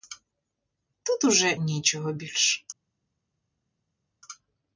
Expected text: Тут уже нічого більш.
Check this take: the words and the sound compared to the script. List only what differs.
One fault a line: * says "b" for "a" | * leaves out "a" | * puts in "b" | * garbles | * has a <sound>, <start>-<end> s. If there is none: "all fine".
all fine